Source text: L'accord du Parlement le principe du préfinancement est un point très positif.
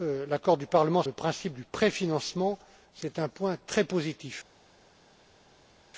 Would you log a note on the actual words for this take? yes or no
no